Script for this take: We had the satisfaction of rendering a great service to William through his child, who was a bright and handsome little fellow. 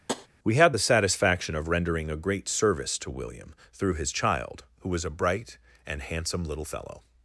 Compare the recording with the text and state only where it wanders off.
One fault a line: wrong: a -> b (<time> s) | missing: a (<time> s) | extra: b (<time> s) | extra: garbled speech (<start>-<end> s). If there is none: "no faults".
no faults